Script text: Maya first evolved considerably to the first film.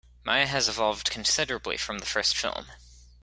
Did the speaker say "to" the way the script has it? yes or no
no